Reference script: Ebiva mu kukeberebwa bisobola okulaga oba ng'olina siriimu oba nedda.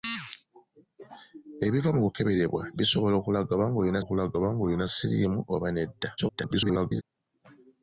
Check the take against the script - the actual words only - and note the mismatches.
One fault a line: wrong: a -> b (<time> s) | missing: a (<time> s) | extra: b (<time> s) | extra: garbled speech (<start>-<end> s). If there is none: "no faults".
extra: okulaga oba ng'olina (4.0 s)
extra: garbled speech (6.2-7.0 s)